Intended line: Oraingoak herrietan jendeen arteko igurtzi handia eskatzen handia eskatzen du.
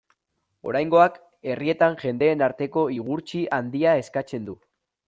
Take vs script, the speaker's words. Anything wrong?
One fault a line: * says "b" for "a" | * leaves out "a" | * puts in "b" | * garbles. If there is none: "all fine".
* leaves out "handia eskatzen"